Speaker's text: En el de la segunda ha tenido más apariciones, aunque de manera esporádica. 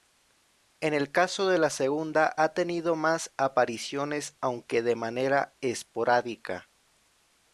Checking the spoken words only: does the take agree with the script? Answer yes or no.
no